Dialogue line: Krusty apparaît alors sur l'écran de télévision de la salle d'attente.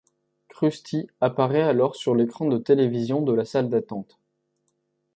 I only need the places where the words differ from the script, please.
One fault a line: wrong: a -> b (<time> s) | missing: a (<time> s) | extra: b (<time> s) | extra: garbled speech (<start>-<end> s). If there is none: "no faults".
no faults